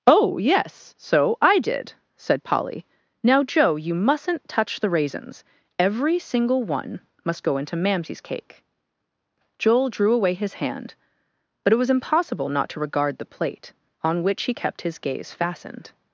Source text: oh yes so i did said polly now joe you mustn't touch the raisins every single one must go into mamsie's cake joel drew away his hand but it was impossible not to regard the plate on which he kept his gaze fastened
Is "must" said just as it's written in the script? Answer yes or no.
yes